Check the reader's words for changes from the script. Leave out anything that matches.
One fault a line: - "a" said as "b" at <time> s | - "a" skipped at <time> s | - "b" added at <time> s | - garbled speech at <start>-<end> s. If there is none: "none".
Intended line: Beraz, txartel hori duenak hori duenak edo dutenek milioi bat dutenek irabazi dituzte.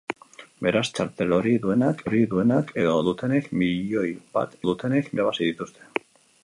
none